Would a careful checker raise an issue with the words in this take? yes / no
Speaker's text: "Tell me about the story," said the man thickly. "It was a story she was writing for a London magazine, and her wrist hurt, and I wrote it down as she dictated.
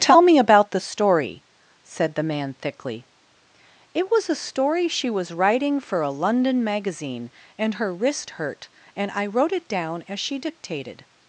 no